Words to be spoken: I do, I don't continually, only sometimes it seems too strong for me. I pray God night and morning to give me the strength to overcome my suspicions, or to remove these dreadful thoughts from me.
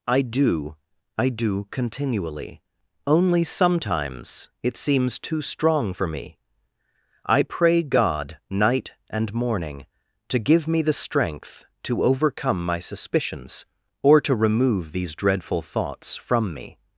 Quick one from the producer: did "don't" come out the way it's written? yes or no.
no